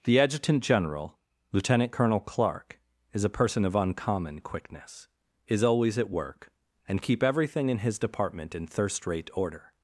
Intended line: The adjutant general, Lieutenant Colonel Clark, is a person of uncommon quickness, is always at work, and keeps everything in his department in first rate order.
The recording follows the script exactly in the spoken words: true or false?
false